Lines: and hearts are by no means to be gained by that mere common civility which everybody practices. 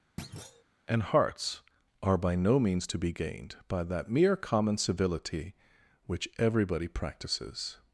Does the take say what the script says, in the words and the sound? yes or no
no